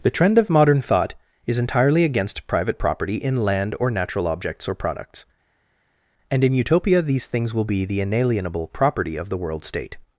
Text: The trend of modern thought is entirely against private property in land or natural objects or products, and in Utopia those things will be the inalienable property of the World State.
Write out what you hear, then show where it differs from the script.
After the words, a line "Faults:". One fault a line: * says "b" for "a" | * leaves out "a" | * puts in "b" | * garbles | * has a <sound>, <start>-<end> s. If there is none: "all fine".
The trend of modern thought is entirely against private property in land or natural objects or products, and in Utopia these things will be the inalienable property of the World State.
Faults:
* says "these" for "those"